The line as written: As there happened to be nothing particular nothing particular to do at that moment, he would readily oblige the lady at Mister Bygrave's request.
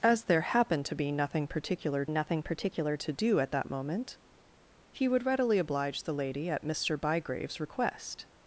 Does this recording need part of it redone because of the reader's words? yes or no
no